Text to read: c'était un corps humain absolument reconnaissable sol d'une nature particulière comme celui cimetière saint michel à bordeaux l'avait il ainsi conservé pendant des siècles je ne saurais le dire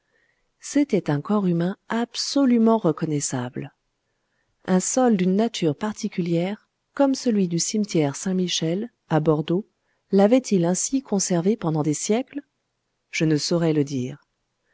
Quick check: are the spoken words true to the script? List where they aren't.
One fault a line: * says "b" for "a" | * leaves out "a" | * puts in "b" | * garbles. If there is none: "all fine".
* puts in "un"
* puts in "du"